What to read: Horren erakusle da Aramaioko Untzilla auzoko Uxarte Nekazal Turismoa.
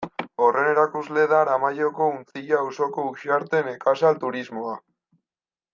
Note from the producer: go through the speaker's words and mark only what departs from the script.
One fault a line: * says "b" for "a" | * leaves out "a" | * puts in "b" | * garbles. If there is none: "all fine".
all fine